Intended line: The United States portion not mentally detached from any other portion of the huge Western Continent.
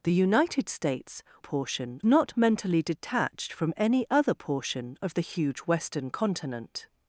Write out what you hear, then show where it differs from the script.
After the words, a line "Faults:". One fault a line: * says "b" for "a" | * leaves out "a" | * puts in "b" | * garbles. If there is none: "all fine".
The United States portion not mentally detached from any other portion of the huge Western Continent.
Faults:
all fine